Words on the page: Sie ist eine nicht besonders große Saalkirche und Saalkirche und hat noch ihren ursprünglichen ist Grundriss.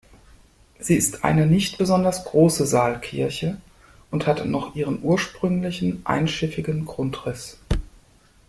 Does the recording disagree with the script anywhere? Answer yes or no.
yes